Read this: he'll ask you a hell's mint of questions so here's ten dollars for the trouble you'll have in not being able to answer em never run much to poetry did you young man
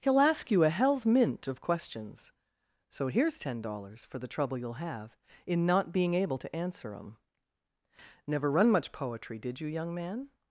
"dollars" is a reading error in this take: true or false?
false